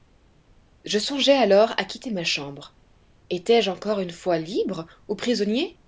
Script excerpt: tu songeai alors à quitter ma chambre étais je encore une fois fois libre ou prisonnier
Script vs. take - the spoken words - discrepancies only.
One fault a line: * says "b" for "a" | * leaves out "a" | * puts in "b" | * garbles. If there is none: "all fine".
* says "je" for "tu"
* leaves out "fois"